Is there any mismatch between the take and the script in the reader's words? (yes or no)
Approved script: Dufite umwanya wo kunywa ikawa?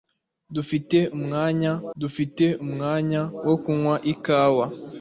yes